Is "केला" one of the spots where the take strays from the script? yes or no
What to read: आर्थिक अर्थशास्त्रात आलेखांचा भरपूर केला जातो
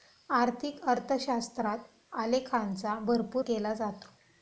no